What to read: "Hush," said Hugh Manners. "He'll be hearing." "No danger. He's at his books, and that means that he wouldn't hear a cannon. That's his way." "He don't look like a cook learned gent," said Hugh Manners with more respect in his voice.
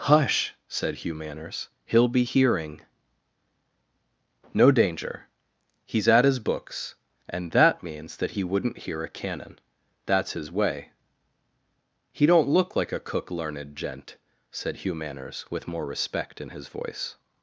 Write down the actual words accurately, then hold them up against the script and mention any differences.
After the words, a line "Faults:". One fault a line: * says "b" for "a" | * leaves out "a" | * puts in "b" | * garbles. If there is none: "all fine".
"Hush," said Hugh Manners. "He'll be hearing." "No danger. He's at his books, and that means that he wouldn't hear a cannon. That's his way." "He don't look like a cook learned gent," said Hugh Manners with more respect in his voice.
Faults:
all fine